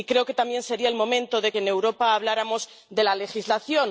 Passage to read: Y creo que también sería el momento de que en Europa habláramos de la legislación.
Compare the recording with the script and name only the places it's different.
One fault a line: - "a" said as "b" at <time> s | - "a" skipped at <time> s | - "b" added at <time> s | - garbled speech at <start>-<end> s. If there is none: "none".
- "que" skipped at 1.5 s